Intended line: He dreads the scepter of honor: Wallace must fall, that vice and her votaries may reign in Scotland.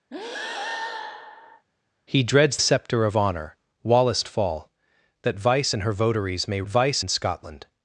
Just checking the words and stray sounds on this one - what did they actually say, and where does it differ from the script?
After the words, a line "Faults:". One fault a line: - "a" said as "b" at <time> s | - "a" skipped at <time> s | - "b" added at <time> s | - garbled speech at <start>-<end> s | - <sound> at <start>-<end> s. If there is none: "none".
He dreads scepter of honor: Wallace fall, that vice and her votaries may vice in Scotland.
Faults:
- breath at 0.1-1.7 s
- "the" skipped at 2.6 s
- "must" skipped at 4.2 s
- "reign" said as "vice" at 6.7 s